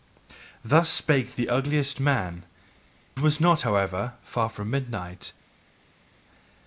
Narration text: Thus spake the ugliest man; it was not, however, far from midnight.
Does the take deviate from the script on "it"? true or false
true